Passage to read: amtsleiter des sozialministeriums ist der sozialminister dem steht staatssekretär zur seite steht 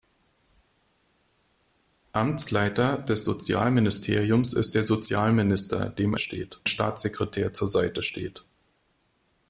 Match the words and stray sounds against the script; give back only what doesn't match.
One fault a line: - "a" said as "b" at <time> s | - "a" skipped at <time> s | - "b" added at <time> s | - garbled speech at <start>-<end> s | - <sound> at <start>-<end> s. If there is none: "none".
none